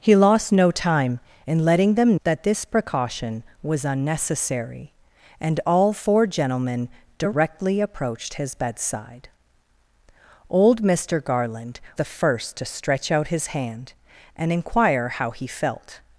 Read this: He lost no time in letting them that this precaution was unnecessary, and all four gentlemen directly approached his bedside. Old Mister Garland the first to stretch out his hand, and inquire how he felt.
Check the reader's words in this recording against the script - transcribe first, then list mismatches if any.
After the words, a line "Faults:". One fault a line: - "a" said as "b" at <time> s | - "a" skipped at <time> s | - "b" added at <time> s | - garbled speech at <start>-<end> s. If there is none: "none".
He lost no time in letting them that this precaution was unnecessary, and all four gentlemen directly approached his bedside. Old Mister Garland the first to stretch out his hand, and inquire how he felt.
Faults:
none